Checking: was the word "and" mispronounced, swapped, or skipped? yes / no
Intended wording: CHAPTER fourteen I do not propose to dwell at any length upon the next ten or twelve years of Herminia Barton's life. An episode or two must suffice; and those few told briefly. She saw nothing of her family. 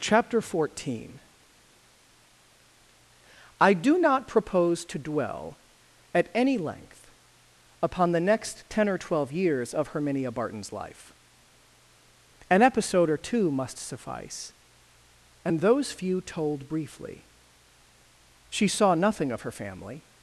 no